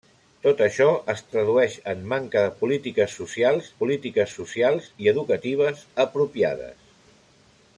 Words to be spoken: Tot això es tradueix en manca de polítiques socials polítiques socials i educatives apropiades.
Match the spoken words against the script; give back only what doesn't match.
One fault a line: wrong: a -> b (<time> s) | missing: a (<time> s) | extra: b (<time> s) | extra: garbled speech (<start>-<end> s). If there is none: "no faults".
no faults